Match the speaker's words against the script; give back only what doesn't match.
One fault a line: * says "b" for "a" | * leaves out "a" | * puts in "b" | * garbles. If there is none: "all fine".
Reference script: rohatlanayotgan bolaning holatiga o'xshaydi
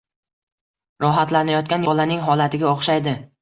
all fine